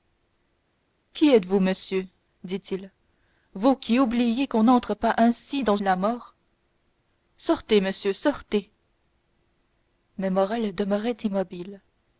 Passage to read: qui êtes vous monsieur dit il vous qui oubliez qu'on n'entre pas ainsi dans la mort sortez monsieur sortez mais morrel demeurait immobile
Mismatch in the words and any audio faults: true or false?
false